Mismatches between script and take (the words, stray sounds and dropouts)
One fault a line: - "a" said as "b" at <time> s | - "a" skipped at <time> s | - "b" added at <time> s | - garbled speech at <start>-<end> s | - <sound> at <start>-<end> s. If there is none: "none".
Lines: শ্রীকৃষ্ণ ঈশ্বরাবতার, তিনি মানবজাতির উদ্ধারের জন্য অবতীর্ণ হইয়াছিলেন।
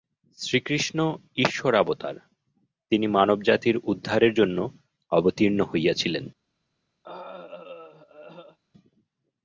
- throat clearing at 7.0-8.6 s